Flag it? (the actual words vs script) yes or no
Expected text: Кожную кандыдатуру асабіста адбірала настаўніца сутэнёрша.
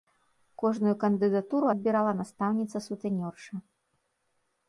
yes